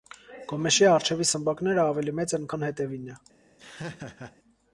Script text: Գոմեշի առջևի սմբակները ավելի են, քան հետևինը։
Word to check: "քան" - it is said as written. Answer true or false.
true